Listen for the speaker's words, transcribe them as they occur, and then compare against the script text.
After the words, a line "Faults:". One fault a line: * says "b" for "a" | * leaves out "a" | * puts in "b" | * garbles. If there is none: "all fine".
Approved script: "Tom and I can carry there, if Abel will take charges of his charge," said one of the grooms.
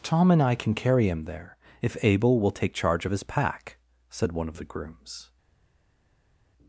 "Tom and I can carry him there, if Abel will take charge of his pack," said one of the grooms.
Faults:
* puts in "him"
* says "charge" for "charges"
* says "pack" for "charge"